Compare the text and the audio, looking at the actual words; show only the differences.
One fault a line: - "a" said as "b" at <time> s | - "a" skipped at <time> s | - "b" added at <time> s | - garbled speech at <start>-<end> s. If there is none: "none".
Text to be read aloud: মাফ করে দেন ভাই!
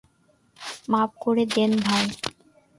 none